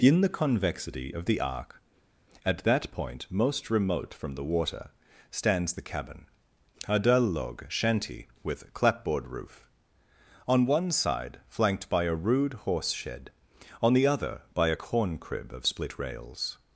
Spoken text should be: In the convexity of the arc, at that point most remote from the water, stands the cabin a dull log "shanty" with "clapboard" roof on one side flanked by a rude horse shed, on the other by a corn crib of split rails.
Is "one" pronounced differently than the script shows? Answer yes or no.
no